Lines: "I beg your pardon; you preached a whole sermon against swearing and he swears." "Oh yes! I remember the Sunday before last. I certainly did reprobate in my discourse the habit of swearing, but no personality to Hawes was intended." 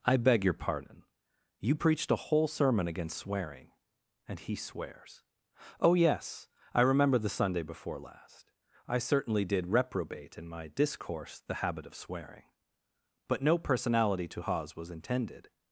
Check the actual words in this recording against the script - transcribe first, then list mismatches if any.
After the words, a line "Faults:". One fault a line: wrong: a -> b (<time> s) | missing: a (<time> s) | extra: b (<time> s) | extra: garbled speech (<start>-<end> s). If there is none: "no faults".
"I beg your pardon; you preached a whole sermon against swearing and he swears." "Oh yes! I remember the Sunday before last. I certainly did reprobate in my discourse the habit of swearing, but no personality to Hawes was intended."
Faults:
no faults